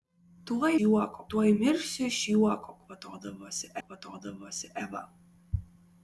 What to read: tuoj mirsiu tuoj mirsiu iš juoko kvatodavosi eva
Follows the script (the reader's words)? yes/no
no